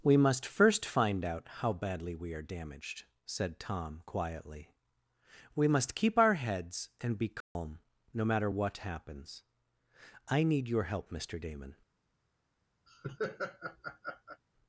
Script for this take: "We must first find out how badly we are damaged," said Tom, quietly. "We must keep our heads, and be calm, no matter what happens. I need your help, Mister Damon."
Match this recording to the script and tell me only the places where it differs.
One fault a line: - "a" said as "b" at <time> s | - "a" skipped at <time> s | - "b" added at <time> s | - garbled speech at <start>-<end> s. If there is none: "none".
none